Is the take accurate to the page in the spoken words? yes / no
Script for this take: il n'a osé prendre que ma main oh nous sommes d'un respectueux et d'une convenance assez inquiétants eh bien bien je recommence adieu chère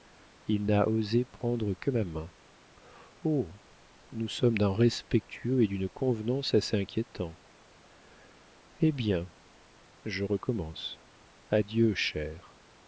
no